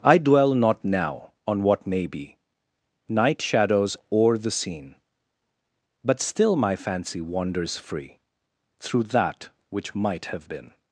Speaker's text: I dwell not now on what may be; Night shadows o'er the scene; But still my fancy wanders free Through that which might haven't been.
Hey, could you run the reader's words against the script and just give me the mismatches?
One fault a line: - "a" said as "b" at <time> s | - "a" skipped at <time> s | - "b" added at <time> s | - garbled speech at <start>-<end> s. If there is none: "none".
- "haven't" said as "have" at 10.3 s